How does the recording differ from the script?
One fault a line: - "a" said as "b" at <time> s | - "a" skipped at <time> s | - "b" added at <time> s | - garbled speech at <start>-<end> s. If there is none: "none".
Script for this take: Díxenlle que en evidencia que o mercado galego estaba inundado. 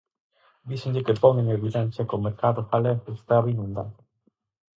- "pon" added at 1.2 s